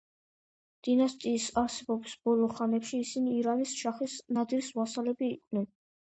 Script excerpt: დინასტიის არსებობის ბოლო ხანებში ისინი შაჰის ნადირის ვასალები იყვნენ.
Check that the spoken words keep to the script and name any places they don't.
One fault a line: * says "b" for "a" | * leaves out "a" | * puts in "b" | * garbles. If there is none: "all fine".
* puts in "ირანის"